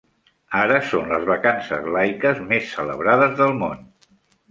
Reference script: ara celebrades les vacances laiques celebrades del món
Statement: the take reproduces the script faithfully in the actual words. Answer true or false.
false